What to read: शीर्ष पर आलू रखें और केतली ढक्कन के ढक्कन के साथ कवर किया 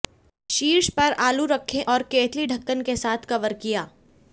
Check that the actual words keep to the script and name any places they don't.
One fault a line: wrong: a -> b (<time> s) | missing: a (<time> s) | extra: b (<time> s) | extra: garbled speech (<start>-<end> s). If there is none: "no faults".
missing: ढक्कन के (3.0 s)